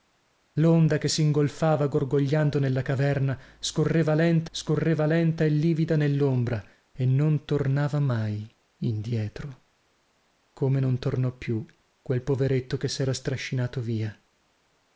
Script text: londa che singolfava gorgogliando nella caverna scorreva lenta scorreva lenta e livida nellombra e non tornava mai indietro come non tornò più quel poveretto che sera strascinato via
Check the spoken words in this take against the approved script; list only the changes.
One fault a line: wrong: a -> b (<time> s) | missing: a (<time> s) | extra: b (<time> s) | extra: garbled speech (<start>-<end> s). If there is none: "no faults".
no faults